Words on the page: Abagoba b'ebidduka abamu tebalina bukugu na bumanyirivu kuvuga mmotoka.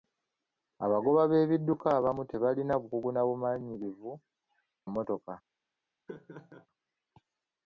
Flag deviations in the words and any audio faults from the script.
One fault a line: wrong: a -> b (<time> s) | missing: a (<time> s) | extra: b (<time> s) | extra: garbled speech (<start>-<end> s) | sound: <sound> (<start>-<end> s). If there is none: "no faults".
missing: kuvuga (4.1 s)
sound: laugh (6.1-6.7 s)